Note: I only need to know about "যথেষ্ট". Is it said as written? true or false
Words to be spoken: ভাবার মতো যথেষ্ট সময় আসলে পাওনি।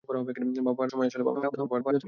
false